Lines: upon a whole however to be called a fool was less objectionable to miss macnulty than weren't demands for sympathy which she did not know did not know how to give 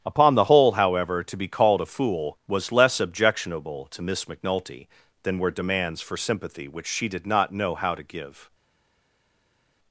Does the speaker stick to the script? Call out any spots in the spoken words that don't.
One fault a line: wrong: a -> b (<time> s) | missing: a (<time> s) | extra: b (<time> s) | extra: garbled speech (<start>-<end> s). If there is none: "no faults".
wrong: a -> the (0.3 s)
wrong: weren't -> were (5.4 s)
missing: did not know (7.7 s)